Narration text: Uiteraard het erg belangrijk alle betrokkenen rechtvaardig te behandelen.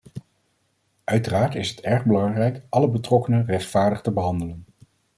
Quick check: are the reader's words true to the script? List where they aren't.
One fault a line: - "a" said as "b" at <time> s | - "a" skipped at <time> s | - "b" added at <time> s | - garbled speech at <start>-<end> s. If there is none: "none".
- "is" added at 1.6 s